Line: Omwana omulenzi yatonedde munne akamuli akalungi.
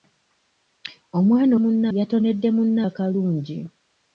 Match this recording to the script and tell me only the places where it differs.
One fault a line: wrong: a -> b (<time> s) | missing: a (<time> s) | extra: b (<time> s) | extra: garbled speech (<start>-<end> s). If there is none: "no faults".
wrong: omulenzi -> munne (1.6 s)
missing: akamuli (2.8 s)